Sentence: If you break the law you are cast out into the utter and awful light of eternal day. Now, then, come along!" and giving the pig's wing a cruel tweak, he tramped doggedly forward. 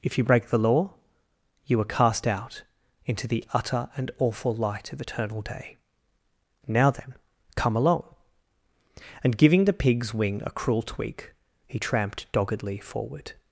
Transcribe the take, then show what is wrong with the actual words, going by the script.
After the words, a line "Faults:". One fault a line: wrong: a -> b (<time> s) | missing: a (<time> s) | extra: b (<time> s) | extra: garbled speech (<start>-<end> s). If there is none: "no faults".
If you break the law you are cast out into the utter and awful light of eternal day. Now, then, come along!" and giving the pig's wing a cruel tweak, he tramped doggedly forward.
Faults:
no faults